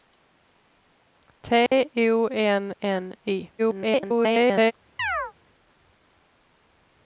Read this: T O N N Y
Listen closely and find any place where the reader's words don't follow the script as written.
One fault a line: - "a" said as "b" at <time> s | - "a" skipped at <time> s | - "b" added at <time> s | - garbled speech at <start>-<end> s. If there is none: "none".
- garbled speech at 3.6-4.7 s